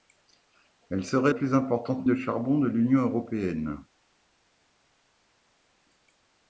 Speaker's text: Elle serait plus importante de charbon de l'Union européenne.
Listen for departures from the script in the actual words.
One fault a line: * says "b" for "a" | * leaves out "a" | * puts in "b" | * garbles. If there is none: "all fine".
all fine